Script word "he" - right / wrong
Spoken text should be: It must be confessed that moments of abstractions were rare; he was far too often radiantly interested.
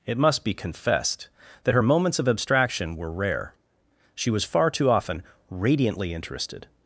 wrong